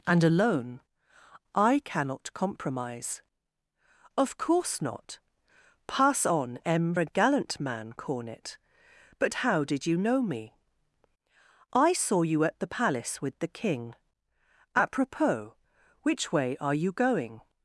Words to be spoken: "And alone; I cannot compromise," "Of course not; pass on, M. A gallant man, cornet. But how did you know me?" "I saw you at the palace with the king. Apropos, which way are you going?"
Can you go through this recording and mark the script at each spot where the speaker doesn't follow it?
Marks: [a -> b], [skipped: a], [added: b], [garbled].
"And alone; I cannot compromise," "Of course not; pass on, M. A gallant man, cornet. But how did you know me?" "I saw you at the palace with the king. Apropos, which way are you going?"